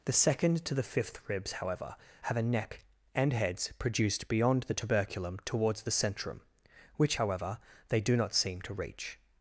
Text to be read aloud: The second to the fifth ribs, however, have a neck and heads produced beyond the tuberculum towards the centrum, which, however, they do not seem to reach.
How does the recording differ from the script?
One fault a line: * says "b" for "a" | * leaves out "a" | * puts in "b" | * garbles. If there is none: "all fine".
all fine